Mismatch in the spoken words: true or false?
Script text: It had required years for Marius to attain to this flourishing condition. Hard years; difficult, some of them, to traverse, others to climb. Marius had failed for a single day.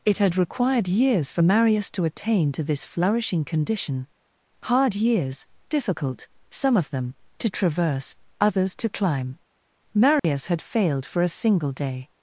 false